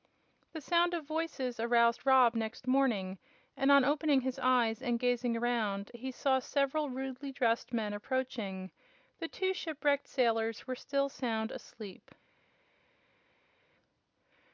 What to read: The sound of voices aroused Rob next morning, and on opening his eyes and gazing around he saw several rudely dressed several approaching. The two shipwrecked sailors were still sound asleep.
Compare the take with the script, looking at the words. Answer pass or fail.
fail